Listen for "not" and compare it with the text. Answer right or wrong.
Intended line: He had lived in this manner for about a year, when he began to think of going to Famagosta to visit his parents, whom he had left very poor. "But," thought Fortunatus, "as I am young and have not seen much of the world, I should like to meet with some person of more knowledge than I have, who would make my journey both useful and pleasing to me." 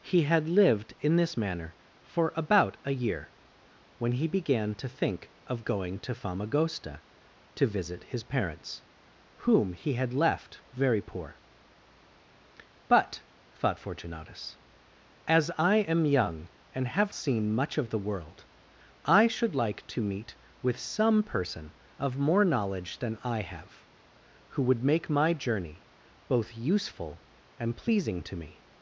wrong